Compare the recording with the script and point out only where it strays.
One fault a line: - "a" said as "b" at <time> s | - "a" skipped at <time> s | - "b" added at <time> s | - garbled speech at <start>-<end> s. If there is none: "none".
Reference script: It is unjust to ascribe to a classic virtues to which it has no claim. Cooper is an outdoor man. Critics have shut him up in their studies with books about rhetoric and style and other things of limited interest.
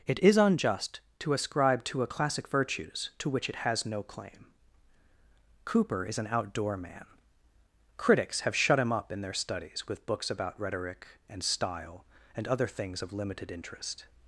none